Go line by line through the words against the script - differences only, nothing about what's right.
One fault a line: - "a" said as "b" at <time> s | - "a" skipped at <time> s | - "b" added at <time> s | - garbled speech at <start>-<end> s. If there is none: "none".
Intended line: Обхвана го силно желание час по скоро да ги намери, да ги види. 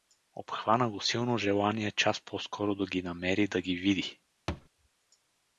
none